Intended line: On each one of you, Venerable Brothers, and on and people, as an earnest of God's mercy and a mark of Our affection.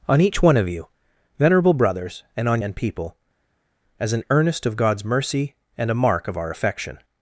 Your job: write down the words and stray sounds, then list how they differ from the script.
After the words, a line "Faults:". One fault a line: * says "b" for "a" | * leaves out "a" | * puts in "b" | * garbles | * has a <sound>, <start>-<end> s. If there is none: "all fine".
On each one of you, Venerable Brothers, and on and people, as an earnest of God's mercy and a mark of Our affection.
Faults:
all fine